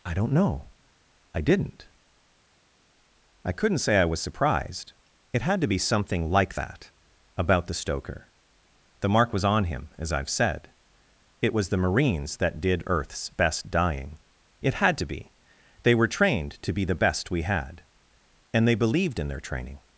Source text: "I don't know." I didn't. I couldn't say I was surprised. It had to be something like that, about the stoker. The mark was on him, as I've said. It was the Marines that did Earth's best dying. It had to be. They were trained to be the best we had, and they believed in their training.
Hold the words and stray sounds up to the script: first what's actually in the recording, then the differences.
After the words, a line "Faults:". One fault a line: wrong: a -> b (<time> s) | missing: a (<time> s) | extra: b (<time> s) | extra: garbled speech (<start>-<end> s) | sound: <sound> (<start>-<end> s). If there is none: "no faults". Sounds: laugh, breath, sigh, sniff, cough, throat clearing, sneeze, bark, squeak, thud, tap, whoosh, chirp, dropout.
"I don't know." I didn't. I couldn't say I was surprised. It had to be something like that, about the stoker. The mark was on him, as I've said. It was the Marines that did Earth's best dying. It had to be. They were trained to be the best we had, and they believed in their training.
Faults:
no faults